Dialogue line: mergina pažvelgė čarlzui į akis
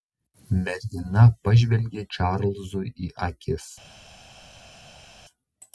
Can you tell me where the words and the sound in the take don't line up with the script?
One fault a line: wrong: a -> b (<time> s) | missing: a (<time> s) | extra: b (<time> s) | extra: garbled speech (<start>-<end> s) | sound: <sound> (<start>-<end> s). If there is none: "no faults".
no faults